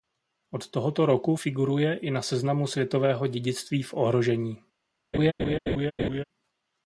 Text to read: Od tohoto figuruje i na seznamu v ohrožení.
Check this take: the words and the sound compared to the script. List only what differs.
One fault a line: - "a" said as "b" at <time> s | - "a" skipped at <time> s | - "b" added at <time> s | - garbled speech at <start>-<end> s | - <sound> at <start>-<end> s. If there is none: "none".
- "roku" added at 1.1 s
- "světového dědictví" added at 2.7 s
- laugh at 5.1-6.2 s